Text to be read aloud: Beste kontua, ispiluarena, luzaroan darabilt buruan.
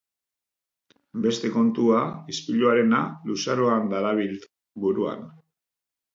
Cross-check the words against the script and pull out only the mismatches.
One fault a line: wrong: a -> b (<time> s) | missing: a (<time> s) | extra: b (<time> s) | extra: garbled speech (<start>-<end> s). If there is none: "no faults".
no faults